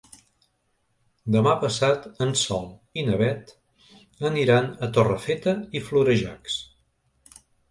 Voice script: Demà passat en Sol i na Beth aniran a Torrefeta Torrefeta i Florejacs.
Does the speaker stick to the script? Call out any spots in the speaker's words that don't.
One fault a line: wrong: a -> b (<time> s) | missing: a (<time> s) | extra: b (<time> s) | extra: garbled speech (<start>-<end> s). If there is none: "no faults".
missing: Torrefeta (5.6 s)